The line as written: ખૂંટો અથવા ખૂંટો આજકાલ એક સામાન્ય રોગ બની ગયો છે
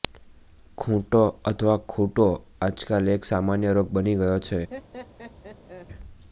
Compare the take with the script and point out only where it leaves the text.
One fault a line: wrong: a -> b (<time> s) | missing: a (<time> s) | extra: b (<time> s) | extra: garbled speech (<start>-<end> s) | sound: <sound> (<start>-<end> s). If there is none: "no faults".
sound: laugh (4.7-5.9 s)